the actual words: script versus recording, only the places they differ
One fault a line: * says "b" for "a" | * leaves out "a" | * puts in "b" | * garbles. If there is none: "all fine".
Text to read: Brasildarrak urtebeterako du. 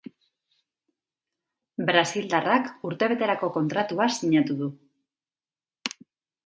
* puts in "kontratua sinatu"